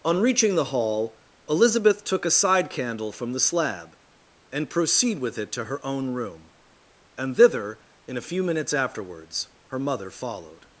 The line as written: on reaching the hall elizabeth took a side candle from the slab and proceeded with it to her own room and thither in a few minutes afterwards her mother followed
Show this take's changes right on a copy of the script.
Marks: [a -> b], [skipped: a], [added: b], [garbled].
on reaching the hall elizabeth took a side candle from the slab and [proceeded -> proceed] with it to her own room and thither in a few minutes afterwards her mother followed